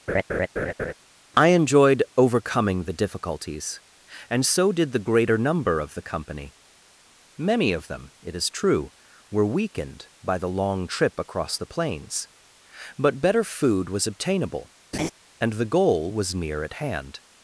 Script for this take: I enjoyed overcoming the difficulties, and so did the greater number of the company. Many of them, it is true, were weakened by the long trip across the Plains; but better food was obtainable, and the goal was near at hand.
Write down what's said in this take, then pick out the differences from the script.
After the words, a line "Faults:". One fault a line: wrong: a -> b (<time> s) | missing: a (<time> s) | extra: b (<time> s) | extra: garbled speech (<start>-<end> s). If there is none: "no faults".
I enjoyed overcoming the difficulties, and so did the greater number of the company. Many of them, it is true, were weakened by the long trip across the Plains; but better food was obtainable, and the goal was near at hand.
Faults:
no faults